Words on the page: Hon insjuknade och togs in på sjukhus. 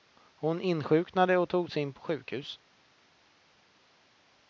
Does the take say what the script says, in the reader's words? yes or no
yes